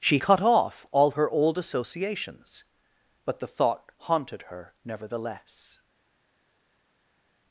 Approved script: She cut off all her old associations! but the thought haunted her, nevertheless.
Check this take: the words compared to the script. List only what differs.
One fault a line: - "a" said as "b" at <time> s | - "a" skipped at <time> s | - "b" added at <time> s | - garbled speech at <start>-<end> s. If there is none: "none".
none